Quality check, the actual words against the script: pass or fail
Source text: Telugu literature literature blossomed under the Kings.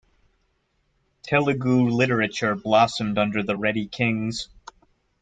fail